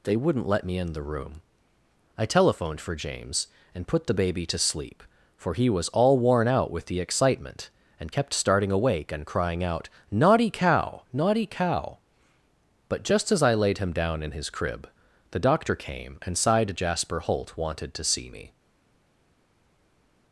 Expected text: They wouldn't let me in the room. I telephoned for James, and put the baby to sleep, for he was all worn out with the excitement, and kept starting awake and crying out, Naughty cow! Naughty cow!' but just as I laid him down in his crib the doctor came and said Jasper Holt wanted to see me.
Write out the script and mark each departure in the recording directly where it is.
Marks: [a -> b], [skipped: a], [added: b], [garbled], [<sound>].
They wouldn't let me in the room. I telephoned for James, and put the baby to sleep, for he was all worn out with the excitement, and kept starting awake and crying out, Naughty cow! Naughty cow!' but just as I laid him down in his crib the doctor came and [said -> sighed] Jasper Holt wanted to see me.